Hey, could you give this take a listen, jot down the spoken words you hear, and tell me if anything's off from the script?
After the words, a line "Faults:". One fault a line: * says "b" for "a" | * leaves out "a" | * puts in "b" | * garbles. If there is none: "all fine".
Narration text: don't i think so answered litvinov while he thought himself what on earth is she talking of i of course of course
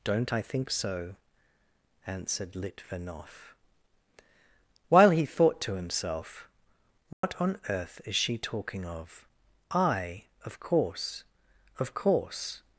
don't i think so answered litvinov while he thought to himself what on earth is she talking of i of course of course
Faults:
* puts in "to"